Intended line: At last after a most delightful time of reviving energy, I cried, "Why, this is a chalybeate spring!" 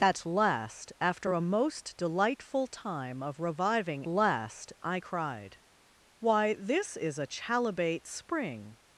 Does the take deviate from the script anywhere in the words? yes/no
yes